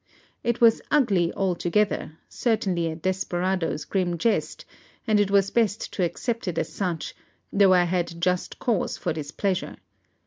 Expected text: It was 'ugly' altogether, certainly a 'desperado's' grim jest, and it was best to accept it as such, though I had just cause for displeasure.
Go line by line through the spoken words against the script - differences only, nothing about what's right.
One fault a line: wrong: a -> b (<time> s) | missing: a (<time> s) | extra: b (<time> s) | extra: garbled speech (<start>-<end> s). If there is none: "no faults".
no faults